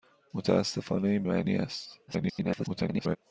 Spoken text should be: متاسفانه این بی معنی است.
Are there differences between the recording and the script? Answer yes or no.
yes